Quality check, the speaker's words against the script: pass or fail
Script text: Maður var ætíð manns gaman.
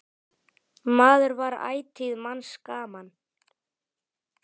pass